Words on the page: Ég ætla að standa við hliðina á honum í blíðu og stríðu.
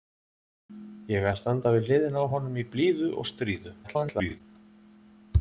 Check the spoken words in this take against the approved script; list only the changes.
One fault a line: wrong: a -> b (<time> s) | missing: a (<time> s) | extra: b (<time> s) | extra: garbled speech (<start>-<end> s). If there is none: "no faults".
missing: ætla (1.3 s)
extra: garbled speech (3.8-4.4 s)